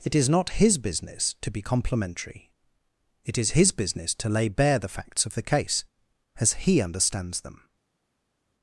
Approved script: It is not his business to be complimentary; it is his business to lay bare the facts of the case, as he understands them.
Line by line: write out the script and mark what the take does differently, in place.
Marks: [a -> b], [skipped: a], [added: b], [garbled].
It is not his business to be complimentary; it is his business to lay bare the facts of the case, as he understands them.